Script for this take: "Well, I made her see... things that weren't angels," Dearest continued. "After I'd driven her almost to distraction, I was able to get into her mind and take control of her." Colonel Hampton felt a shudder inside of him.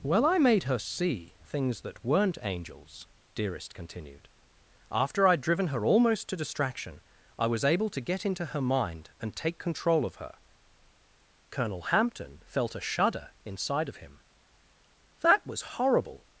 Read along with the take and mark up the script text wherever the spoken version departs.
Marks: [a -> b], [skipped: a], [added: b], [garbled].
"Well, I made her see... things that weren't angels," Dearest continued. "After I'd driven her almost to distraction, I was able to get into her mind and take control of her." Colonel Hampton felt a shudder inside of him. [added: That was horrible]